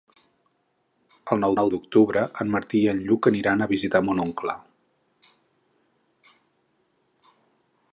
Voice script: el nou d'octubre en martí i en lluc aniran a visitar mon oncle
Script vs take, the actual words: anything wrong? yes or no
yes